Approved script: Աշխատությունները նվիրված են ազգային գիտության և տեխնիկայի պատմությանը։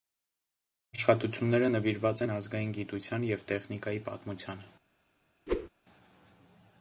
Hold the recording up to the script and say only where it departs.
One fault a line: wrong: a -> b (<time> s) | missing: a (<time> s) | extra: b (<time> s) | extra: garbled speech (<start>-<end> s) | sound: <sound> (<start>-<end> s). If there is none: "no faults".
sound: whoosh (5.5-5.7 s)